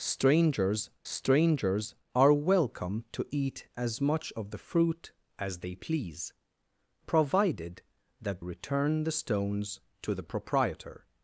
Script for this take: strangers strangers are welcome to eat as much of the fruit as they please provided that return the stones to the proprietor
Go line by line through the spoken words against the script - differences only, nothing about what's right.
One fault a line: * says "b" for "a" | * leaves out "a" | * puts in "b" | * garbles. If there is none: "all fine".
all fine